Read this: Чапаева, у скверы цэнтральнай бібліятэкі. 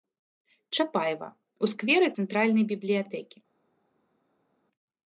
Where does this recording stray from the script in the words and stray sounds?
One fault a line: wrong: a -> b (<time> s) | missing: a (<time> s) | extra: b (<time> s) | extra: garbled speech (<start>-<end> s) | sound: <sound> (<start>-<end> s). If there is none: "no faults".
no faults